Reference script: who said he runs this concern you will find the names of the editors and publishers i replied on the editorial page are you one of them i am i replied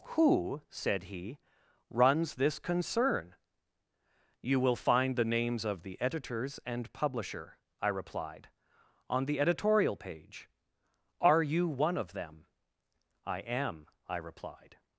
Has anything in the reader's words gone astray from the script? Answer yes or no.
yes